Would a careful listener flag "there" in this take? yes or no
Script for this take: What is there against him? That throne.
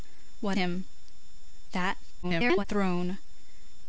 yes